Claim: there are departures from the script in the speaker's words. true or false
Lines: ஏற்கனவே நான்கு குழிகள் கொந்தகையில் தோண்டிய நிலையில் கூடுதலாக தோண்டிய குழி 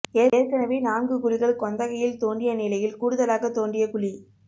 false